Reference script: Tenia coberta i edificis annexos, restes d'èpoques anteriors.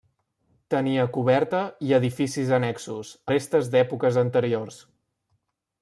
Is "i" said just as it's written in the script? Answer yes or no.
yes